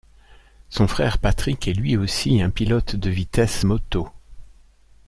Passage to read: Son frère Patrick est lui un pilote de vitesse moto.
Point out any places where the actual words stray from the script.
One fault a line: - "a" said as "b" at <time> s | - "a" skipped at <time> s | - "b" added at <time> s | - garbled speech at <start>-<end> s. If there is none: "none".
- "aussi" added at 1.9 s